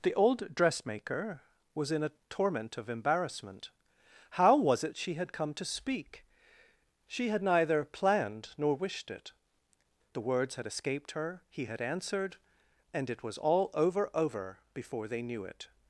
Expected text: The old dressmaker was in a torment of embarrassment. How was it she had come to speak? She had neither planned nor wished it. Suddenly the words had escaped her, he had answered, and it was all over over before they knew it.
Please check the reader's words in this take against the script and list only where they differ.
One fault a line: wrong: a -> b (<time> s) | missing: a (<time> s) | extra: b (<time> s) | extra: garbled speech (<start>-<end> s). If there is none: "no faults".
missing: Suddenly (9.3 s)